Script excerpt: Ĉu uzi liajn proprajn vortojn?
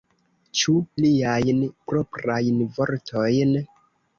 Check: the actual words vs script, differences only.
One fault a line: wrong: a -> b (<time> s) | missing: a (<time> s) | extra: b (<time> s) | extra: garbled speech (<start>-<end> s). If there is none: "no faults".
missing: uzi (0.7 s)